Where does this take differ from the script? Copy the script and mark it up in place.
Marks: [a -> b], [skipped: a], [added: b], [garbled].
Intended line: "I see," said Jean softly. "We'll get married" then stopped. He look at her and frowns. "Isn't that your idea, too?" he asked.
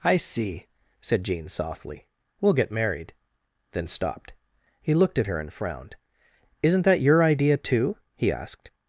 "I see," said Jean softly. "We'll get married" then stopped. He [look -> looked] at her and [frowns. -> frowned] "Isn't that your idea, too?" he asked.